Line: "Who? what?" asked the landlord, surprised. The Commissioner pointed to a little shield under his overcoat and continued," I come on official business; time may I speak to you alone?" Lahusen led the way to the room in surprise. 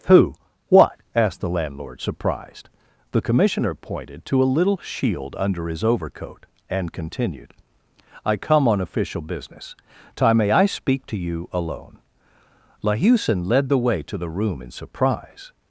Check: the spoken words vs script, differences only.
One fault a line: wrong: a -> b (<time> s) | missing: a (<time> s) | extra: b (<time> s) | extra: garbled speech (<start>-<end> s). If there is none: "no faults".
no faults